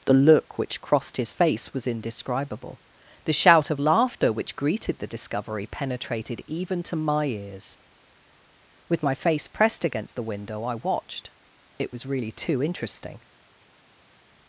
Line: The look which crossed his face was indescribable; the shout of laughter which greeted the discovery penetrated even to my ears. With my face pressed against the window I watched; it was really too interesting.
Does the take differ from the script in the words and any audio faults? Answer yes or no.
no